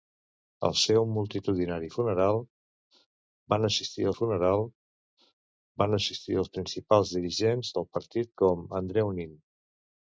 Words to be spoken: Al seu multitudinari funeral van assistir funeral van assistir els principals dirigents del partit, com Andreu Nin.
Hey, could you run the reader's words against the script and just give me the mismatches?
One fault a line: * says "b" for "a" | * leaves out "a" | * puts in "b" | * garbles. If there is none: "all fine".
all fine